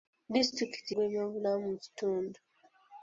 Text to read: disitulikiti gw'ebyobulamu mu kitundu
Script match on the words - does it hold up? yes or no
yes